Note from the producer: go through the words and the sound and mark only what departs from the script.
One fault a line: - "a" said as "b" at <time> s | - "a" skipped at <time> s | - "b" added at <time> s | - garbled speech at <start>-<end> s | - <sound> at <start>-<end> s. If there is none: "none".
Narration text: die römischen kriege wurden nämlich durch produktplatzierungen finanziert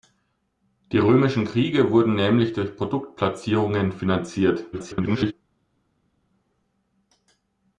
- garbled speech at 4.7-5.3 s